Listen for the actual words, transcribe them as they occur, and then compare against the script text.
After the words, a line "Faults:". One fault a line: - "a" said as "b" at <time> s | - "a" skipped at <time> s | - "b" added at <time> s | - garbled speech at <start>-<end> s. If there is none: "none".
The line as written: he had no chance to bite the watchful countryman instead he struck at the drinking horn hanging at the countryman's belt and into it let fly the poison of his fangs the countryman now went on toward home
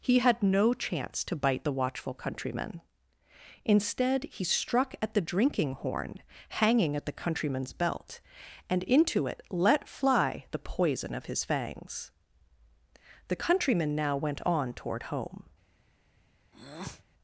he had no chance to bite the watchful countryman instead he struck at the drinking horn hanging at the countryman's belt and into it let fly the poison of his fangs the countryman now went on toward home
Faults:
none